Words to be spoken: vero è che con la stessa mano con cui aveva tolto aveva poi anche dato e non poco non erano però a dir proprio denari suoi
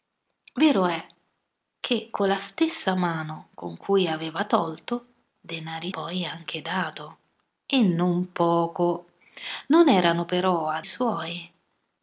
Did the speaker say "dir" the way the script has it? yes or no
no